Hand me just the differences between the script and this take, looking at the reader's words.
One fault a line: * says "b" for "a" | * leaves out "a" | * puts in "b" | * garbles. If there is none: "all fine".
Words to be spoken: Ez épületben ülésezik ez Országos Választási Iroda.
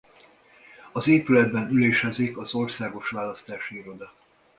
* says "Az" for "Ez"
* says "az" for "ez"